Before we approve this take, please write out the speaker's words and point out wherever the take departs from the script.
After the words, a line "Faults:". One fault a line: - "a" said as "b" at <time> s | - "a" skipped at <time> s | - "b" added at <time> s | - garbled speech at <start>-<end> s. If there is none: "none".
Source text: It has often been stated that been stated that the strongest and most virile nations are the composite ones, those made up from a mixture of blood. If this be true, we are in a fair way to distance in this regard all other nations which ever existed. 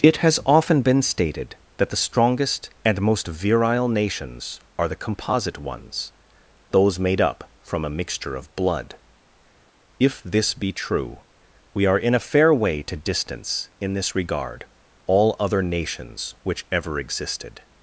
It has often been stated that the strongest and most virile nations are the composite ones, those made up from a mixture of blood. If this be true, we are in a fair way to distance in this regard all other nations which ever existed.
Faults:
- "been stated that" skipped at 1.9 s